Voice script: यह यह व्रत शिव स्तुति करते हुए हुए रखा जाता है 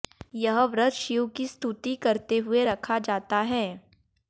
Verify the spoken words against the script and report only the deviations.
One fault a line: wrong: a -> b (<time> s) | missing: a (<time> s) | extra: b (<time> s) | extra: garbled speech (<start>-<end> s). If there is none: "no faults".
missing: यह (0.6 s)
extra: की (1.3 s)
missing: हुए (2.6 s)